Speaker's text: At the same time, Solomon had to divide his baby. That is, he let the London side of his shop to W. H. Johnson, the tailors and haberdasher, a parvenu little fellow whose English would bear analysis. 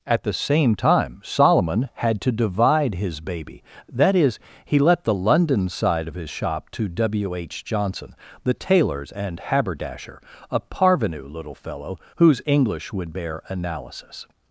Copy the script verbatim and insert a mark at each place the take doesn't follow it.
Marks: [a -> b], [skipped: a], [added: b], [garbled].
At the same time, Solomon had to divide his baby. That is, he let the London side of his shop to W. H. Johnson, the tailors and haberdasher, a parvenu little fellow whose English would bear analysis.